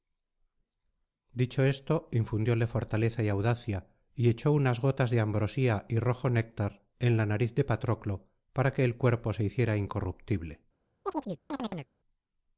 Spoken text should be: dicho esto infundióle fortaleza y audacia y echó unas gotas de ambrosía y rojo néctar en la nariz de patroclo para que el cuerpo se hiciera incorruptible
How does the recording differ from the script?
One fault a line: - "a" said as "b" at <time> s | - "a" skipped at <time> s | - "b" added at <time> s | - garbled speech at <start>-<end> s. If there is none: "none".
none